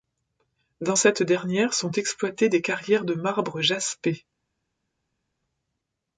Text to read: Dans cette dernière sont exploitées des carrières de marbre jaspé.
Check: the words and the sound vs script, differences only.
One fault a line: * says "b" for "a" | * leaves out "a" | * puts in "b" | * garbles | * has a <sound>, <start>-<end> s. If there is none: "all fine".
all fine